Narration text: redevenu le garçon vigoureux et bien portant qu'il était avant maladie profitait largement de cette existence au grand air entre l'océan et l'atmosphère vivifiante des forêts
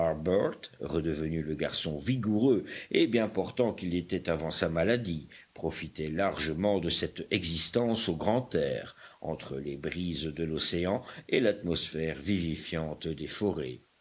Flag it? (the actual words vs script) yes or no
yes